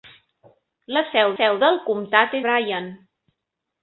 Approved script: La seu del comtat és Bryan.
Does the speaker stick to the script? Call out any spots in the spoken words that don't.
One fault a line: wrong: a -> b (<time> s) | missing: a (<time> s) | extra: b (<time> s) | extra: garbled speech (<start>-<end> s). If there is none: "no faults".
extra: seu (1.4 s)
missing: és (2.4 s)